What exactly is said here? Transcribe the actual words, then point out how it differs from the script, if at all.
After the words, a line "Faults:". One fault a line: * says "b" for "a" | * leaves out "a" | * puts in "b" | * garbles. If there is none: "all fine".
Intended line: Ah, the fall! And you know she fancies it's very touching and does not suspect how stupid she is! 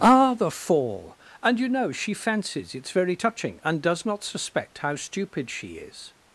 Ah, the fall! And you know she fancies it's very touching and does not suspect how stupid she is!
Faults:
all fine